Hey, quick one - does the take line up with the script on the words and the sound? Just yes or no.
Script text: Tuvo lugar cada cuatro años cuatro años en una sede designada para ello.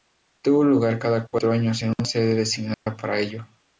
no